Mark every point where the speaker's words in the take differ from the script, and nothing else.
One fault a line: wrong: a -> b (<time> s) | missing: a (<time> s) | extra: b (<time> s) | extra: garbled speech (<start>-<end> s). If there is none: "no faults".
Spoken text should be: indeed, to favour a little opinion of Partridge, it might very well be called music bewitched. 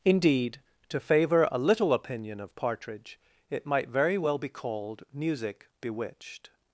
no faults